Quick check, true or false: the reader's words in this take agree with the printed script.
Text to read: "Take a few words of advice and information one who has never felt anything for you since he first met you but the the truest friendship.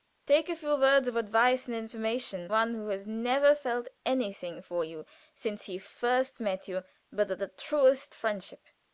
true